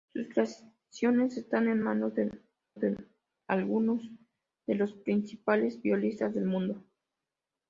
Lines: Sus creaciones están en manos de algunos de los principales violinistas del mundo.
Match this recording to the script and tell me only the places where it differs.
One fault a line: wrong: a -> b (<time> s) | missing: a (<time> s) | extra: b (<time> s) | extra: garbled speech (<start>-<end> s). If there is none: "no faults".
extra: de (2.8 s)